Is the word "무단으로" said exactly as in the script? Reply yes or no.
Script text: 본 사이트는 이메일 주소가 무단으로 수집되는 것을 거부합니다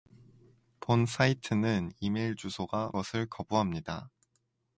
no